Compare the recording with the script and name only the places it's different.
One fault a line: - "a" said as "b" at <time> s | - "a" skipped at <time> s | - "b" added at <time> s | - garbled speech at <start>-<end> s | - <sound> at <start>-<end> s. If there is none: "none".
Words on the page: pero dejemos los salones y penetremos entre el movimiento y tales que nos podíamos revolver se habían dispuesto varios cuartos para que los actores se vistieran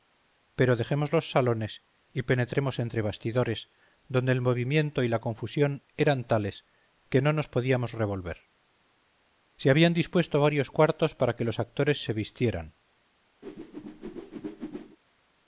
- "bastidores donde" added at 3.0 s
- "la confusión eran" added at 5.1 s
- "no" added at 7.2 s
- whoosh at 13.4-15.0 s